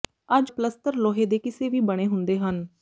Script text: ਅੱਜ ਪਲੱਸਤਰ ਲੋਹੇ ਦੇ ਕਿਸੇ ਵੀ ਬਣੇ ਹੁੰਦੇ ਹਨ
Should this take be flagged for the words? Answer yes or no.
no